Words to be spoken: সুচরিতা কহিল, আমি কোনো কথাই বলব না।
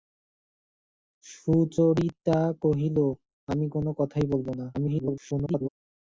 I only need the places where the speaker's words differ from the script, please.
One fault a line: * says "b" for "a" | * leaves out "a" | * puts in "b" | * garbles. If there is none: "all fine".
* garbles